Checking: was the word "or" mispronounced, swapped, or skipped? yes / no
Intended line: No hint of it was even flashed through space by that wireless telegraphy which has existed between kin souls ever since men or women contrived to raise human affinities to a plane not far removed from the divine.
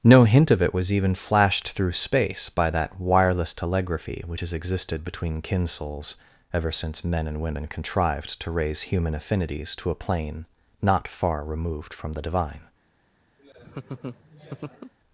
yes